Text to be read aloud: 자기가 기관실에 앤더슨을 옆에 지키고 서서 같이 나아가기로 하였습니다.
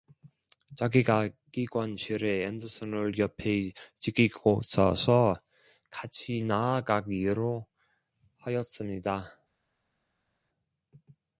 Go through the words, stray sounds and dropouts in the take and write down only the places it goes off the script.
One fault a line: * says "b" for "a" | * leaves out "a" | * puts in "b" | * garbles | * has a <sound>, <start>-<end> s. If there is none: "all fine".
all fine